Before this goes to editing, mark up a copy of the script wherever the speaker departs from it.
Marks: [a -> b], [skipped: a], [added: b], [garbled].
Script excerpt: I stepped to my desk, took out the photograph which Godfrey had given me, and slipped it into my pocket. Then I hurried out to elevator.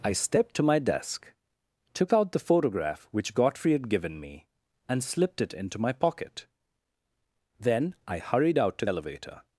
I stepped to my desk, took out the photograph which Godfrey had given me, and slipped it into my pocket. Then I hurried out to elevator.